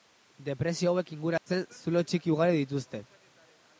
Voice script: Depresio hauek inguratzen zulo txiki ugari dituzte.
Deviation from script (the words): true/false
false